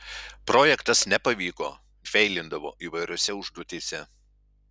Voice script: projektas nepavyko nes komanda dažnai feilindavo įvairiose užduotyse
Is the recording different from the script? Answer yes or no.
yes